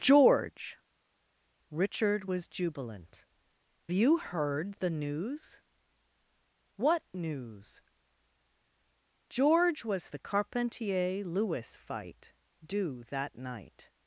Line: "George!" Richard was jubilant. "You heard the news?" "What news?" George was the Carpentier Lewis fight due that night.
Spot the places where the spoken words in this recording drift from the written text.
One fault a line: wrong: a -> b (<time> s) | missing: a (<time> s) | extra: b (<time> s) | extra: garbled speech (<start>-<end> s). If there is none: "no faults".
no faults